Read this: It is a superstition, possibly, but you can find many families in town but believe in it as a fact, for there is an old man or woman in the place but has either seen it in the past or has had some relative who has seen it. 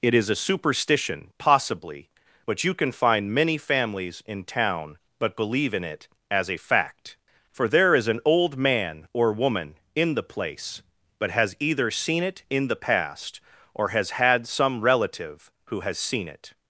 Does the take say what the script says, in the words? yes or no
yes